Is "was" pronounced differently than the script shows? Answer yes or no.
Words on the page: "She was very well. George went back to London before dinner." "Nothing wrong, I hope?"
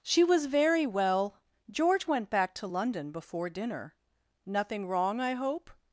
no